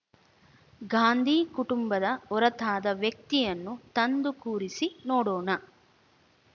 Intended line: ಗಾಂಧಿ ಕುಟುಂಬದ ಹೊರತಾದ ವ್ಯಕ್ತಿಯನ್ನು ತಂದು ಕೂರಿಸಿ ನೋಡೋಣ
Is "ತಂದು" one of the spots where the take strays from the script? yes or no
no